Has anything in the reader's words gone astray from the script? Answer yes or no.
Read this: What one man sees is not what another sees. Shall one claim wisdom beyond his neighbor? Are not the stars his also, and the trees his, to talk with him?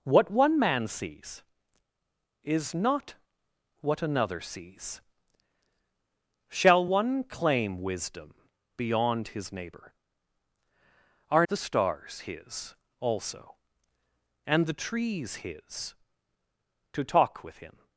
yes